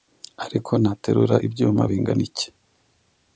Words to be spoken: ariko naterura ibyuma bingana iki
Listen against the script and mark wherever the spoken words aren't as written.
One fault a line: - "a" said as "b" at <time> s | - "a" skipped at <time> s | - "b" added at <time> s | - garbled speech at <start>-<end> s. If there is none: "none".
none